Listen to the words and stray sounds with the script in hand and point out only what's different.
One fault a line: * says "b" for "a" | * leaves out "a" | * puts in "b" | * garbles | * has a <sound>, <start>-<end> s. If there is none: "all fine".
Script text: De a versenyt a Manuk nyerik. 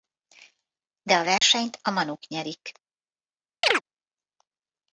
* has a dropout, 1.4-1.4 s
* has a chirp, 3.6-3.8 s